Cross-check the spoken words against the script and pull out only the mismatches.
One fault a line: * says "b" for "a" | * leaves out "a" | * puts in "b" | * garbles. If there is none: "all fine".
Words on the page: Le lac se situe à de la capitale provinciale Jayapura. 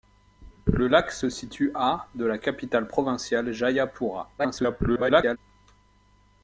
* garbles